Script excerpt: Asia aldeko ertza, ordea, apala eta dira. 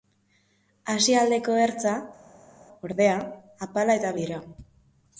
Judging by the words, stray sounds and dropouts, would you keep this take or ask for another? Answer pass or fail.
pass